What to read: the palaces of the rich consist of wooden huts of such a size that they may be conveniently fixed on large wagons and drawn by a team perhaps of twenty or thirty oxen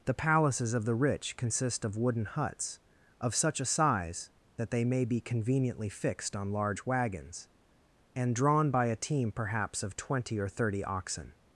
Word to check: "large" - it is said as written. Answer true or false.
true